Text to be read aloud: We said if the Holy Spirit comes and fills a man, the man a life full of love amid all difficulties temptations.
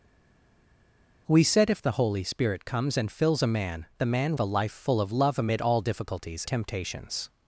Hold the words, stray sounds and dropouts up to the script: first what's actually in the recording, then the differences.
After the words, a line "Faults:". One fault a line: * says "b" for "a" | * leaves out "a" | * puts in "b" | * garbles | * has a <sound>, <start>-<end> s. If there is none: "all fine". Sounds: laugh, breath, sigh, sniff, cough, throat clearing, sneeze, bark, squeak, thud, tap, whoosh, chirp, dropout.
We said if the Holy Spirit comes and fills a man, the man a life full of love amid all difficulties temptations.
Faults:
all fine